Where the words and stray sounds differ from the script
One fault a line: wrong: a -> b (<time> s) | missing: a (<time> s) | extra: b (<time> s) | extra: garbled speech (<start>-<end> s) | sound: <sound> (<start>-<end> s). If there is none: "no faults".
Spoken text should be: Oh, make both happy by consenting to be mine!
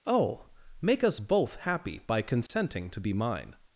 extra: us (1.0 s)
sound: dropout (2.5-2.5 s)